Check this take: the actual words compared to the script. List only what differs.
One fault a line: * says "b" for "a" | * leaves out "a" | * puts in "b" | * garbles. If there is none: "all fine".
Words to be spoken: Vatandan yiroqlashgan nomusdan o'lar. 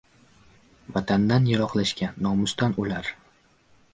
all fine